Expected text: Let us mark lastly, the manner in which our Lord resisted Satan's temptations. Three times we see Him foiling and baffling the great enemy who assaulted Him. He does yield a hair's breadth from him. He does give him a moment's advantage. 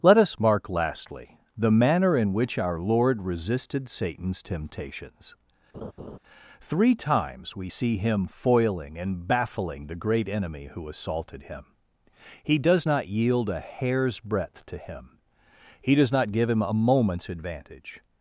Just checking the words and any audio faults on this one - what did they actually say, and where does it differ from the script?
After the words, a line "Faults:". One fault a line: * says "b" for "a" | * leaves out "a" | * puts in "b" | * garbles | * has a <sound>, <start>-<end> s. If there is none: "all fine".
Let us mark lastly, the manner in which our Lord resisted Satan's temptations. Three times we see Him foiling and baffling the great enemy who assaulted Him. He does not yield a hair's breadth to him. He does not give him a moment's advantage.
Faults:
* has a laugh, 5.7-6.2 s
* puts in "not"
* says "to" for "from"
* puts in "not"